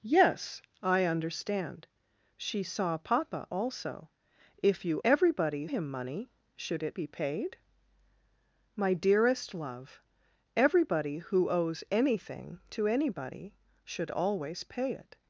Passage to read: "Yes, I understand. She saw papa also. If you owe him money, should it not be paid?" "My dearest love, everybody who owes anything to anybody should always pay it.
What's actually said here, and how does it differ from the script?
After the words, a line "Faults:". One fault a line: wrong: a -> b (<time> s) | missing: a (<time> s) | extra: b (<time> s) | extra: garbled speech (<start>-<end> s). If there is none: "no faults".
"Yes, I understand. She saw papa also. If you everybody him money, should it be paid?" "My dearest love, everybody who owes anything to anybody should always pay it.
Faults:
wrong: owe -> everybody (5.0 s)
missing: not (7.0 s)